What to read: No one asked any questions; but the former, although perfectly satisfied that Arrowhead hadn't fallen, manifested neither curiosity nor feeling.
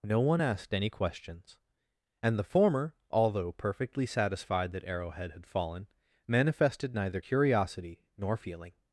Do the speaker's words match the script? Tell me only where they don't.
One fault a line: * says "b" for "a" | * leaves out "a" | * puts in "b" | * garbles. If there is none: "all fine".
* says "and" for "but"
* says "had" for "hadn't"